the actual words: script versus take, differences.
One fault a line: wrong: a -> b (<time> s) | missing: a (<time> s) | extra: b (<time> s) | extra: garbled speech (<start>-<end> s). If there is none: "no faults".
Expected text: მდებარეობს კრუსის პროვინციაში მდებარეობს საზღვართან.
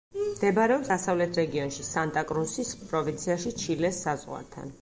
extra: დასავლეთ რეგიონში სანტა (0.9 s)
wrong: მდებარეობს -> ჩილეს (3.6 s)